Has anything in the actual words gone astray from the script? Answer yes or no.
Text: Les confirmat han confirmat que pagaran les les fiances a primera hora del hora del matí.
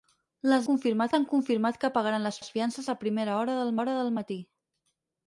no